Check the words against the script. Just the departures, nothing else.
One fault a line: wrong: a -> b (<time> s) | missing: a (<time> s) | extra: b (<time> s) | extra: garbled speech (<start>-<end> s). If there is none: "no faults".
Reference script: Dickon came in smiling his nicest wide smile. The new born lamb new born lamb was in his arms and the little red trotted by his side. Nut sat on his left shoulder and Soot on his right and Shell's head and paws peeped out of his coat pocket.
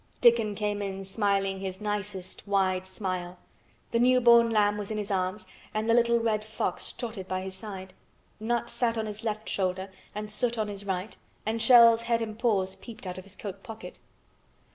missing: new born lamb (4.8 s)
extra: fox (6.4 s)